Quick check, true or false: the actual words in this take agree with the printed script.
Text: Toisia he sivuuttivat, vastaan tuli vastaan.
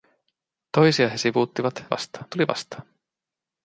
true